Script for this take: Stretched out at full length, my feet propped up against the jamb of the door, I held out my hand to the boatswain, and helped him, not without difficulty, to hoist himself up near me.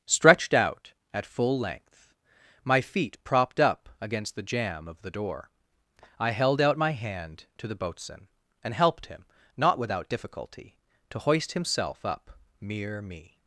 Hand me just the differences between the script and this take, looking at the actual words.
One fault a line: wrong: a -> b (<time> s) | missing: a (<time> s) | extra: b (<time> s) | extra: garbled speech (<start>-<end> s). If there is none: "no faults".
wrong: near -> mere (12.6 s)